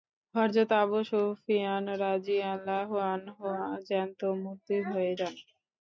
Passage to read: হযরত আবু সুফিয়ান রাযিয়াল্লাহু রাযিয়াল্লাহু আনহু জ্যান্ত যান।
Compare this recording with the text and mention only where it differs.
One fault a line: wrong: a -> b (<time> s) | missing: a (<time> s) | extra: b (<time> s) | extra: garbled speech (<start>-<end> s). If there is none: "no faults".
missing: রাযিয়াল্লাহু (2.9 s)
extra: মূর্তি হয়ে (4.4 s)